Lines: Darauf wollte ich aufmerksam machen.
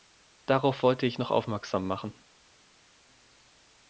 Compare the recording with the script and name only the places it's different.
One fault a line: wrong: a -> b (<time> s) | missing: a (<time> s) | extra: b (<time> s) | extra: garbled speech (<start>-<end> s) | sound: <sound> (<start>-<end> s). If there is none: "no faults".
extra: noch (1.2 s)